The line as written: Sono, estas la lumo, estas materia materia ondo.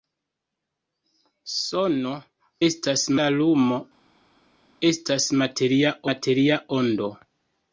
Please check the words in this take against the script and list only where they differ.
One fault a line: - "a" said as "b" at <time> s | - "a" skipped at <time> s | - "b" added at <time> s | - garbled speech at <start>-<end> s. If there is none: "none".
none